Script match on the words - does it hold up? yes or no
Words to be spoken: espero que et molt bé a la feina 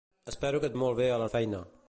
yes